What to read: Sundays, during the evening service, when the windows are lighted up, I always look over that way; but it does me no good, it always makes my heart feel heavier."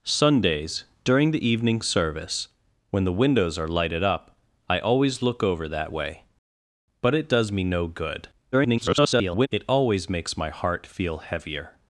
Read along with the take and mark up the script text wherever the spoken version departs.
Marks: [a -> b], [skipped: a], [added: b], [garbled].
Sundays, during the evening service, when the windows are lighted up, I always look over that way; but it does me no good, [garbled] it always makes my heart feel heavier."